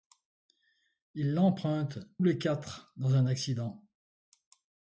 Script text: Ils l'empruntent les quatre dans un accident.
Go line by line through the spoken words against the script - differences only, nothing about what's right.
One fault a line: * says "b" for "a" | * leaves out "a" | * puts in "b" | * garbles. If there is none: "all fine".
all fine